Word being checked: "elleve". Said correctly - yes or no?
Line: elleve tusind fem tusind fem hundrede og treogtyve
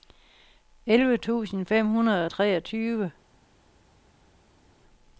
yes